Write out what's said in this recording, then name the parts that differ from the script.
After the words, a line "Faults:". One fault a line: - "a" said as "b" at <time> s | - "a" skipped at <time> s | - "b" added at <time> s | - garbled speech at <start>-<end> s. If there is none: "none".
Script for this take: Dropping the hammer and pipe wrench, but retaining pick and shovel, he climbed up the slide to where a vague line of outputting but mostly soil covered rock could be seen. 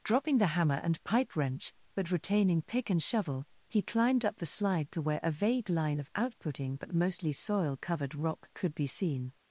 Dropping the hammer and pipe wrench, but retaining pick and shovel, he climbed up the slide to where a vague line of outputting but mostly soil covered rock could be seen.
Faults:
none